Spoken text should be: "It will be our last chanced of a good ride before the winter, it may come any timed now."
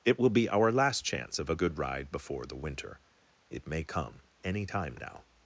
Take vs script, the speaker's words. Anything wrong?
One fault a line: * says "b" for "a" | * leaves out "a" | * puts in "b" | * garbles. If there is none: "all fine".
* says "chance" for "chanced"
* says "time" for "timed"